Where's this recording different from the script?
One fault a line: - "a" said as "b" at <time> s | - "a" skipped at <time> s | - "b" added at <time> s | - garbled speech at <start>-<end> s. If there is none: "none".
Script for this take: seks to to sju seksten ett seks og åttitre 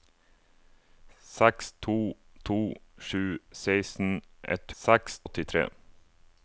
none